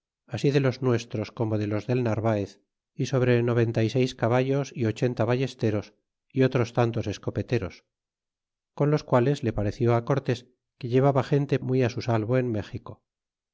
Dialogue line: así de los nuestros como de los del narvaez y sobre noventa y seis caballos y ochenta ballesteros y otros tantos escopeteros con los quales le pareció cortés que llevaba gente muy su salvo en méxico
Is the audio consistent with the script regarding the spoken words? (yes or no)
yes